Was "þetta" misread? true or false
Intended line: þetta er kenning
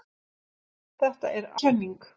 false